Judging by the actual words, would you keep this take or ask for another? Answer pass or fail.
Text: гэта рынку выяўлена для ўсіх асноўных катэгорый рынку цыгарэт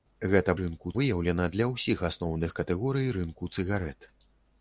pass